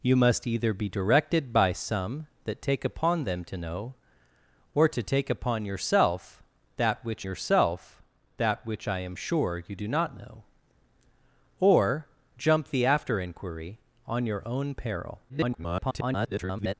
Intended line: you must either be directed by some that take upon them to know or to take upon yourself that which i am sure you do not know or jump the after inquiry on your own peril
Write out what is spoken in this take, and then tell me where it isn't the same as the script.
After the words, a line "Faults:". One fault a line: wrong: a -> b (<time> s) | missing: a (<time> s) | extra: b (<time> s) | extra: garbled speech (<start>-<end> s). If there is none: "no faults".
you must either be directed by some that take upon them to know or to take upon yourself that which yourself that which i am sure you do not know or jump the after inquiry on your own peril [garbled]
Faults:
extra: yourself that which (7.2 s)
extra: garbled speech (15.3-16.7 s)